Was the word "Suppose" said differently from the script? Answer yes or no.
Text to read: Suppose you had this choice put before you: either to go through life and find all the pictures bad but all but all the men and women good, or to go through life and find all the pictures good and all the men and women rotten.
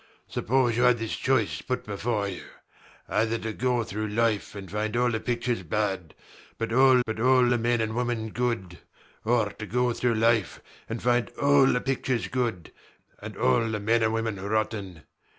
no